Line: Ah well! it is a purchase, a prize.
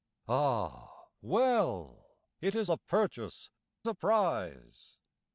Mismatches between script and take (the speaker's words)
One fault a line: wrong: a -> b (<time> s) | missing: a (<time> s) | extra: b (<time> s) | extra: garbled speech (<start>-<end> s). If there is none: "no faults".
no faults